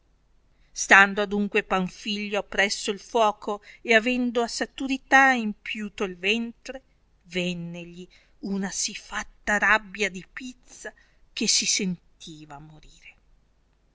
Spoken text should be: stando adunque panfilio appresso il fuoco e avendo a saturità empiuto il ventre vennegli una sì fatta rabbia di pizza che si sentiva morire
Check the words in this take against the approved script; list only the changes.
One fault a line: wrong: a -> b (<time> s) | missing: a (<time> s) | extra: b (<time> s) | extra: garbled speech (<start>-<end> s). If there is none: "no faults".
no faults